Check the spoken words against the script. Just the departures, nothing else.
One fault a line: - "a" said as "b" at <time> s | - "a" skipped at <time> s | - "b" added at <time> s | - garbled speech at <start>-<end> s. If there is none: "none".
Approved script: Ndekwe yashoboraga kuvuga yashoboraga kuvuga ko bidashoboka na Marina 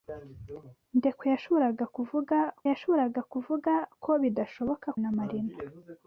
none